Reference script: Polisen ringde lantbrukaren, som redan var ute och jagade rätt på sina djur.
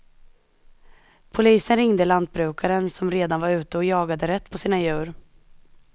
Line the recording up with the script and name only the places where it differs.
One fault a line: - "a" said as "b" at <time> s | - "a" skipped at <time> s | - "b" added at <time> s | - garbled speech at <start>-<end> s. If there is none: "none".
none